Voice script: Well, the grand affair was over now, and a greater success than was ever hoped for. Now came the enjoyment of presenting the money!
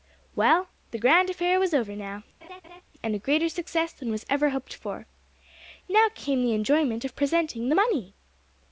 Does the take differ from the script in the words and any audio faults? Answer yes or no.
yes